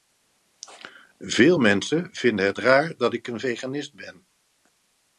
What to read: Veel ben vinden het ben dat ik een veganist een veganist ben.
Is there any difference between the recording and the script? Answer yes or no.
yes